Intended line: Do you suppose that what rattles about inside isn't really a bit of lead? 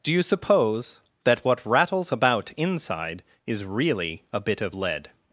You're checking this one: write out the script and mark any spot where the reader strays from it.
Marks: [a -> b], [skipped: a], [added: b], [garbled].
Do you suppose that what rattles about inside [isn't -> is] really a bit of lead?